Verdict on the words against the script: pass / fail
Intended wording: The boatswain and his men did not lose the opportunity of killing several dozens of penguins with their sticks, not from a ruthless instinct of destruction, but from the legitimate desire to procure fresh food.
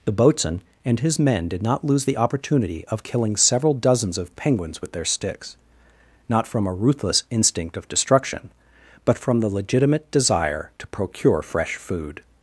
pass